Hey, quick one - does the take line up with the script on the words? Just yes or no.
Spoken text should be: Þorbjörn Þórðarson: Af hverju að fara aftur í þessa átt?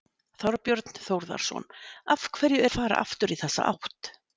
yes